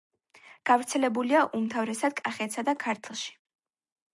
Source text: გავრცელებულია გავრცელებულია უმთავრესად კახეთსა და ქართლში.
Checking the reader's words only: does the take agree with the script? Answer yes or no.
no